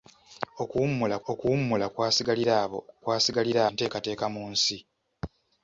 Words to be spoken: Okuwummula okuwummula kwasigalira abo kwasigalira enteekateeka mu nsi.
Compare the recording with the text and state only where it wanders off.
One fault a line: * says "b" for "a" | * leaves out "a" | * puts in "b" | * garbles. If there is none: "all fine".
all fine